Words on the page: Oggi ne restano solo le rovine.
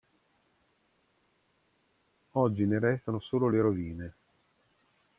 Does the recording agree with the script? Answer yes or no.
yes